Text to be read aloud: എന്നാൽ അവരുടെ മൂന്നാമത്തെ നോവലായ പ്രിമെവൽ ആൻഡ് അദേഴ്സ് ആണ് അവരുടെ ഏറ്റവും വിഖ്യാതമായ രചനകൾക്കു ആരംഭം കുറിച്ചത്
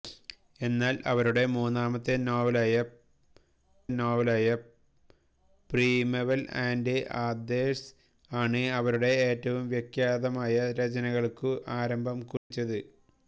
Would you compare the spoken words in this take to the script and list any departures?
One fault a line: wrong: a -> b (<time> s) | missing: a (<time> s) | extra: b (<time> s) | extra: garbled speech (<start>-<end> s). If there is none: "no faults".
extra: നോവലായ (3.9 s)